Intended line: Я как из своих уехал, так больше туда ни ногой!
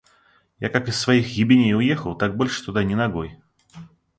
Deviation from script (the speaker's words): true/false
true